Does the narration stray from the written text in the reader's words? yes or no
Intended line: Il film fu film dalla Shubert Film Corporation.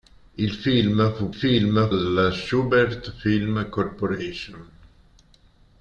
no